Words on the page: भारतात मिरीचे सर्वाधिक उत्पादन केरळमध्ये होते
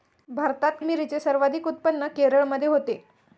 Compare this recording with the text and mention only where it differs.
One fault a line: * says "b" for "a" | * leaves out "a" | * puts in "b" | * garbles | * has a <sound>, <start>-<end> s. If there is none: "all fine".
all fine